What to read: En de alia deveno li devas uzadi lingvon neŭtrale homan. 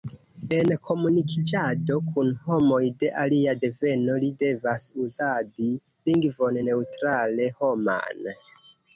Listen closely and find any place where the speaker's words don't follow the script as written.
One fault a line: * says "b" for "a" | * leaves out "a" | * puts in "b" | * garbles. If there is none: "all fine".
* puts in "komunikiĝado kun homoj"